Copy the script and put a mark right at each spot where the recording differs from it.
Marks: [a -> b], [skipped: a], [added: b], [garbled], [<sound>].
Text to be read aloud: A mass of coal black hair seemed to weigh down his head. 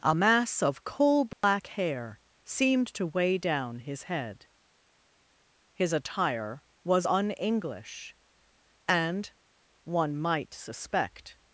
A mass of coal black [dropout] hair seemed to weigh down his head. [added: His attire was un English and one might suspect]